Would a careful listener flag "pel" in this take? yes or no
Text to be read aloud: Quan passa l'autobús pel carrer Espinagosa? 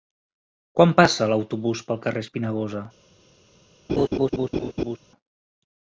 no